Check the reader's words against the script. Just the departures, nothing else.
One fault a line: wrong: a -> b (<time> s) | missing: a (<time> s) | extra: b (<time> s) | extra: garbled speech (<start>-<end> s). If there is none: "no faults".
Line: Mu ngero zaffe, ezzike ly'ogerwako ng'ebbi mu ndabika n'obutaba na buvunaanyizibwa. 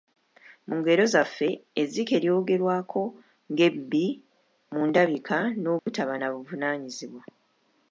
no faults